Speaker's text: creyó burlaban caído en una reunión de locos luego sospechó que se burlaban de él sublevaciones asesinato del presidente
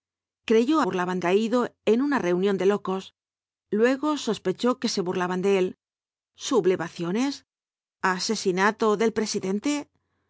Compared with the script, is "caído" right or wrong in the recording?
right